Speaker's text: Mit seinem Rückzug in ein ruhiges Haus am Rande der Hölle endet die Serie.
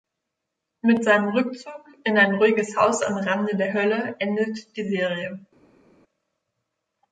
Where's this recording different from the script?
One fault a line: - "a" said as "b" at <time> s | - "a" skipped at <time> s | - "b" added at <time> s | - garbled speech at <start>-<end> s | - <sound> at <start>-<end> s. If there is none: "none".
none